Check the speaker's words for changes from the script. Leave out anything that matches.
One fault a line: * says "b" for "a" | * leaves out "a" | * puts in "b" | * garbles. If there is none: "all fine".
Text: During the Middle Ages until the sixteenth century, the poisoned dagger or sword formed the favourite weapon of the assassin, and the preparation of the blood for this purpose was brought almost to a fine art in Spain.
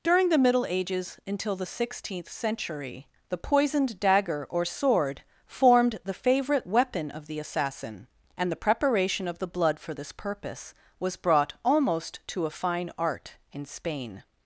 all fine